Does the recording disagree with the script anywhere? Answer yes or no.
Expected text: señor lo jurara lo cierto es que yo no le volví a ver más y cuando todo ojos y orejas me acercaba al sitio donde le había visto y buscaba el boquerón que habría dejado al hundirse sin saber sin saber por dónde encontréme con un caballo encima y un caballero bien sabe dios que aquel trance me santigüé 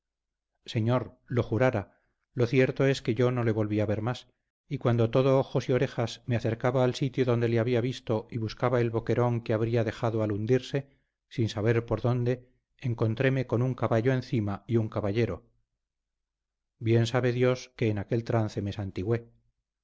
yes